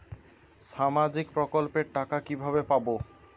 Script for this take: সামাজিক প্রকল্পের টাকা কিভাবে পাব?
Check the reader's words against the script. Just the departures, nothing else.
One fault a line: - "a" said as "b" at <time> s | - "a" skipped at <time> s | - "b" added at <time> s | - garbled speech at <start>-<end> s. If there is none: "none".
none